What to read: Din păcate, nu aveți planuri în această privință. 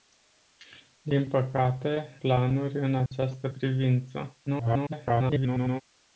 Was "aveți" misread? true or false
true